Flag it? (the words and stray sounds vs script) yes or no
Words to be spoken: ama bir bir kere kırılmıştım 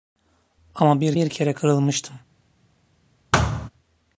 yes